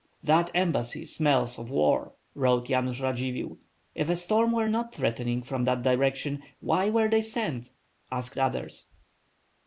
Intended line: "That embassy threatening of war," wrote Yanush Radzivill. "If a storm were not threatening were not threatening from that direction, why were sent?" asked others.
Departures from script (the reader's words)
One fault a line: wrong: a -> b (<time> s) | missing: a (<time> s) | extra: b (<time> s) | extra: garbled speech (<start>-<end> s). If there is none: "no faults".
wrong: threatening -> smells (1.0 s)
missing: were not threatening (5.4 s)
extra: they (7.1 s)